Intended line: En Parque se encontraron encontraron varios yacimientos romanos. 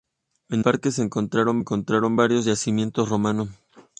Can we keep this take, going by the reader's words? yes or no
yes